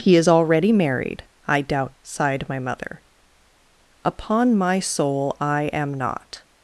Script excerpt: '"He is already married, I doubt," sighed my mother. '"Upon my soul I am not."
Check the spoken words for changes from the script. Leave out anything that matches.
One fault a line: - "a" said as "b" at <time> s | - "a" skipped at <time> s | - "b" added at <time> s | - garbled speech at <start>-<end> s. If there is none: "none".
none